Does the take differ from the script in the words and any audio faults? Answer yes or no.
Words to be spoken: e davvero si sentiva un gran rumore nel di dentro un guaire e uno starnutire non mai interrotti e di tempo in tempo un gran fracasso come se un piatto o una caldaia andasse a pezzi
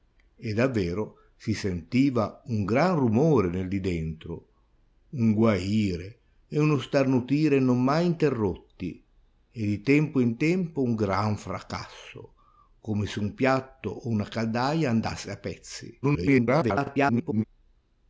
yes